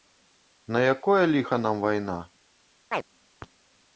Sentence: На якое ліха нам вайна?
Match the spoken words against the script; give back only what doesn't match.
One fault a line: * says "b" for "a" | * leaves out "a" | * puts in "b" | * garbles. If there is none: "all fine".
all fine